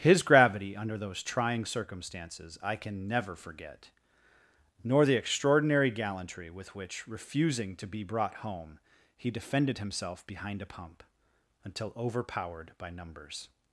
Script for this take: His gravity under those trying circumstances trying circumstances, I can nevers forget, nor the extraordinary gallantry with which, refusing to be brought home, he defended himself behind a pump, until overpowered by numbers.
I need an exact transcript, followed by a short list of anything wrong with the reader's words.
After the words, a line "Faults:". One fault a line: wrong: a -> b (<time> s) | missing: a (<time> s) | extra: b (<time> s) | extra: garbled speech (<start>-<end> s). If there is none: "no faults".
His gravity under those trying circumstances, I can never forget, nor the extraordinary gallantry with which, refusing to be brought home, he defended himself behind a pump, until overpowered by numbers.
Faults:
missing: trying circumstances (2.6 s)
wrong: nevers -> never (3.1 s)